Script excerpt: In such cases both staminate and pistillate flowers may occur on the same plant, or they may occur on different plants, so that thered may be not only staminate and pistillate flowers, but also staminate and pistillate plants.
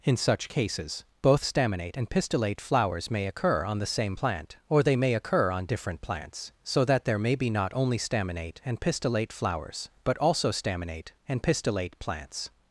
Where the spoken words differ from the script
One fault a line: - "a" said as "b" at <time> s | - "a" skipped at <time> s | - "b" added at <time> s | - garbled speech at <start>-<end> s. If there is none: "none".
- "thered" said as "there" at 7.1 s